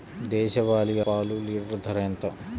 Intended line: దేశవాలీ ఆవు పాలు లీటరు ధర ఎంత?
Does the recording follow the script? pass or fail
fail